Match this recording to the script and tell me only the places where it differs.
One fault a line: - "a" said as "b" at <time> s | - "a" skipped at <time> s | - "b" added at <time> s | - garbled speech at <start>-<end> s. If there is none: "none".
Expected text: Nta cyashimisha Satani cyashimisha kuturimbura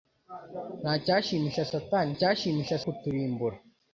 none